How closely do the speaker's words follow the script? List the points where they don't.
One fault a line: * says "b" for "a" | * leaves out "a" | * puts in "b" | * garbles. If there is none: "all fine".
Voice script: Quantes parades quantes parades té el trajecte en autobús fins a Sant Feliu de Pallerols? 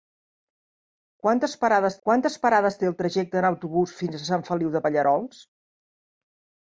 all fine